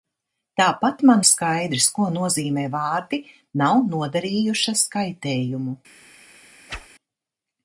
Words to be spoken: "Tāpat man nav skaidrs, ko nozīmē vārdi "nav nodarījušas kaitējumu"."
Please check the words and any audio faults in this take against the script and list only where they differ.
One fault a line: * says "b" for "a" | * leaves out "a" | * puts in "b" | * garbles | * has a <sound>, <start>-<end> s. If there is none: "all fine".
* leaves out "nav"
* has a whoosh, 6.7-6.9 s